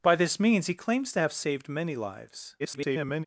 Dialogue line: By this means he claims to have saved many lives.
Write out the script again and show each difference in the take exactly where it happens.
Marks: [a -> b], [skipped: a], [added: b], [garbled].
By this means he claims to have saved many lives. [garbled]